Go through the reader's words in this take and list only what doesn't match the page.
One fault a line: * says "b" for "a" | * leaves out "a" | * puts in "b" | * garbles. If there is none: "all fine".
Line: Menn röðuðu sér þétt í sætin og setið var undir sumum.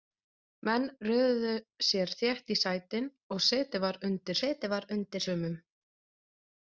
* puts in "setið var undir"